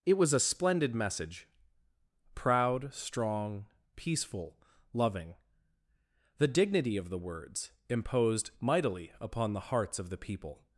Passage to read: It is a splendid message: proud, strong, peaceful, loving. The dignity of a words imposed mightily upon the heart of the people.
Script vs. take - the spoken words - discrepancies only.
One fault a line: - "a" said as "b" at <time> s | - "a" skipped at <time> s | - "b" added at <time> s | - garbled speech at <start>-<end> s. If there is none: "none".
- "is" said as "was" at 0.1 s
- "a" said as "the" at 7.1 s
- "heart" said as "hearts" at 9.7 s